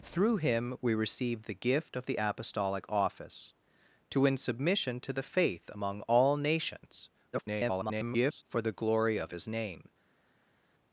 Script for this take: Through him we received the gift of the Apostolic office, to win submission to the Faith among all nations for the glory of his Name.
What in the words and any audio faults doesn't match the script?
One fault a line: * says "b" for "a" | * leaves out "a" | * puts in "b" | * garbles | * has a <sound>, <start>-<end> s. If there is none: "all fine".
* garbles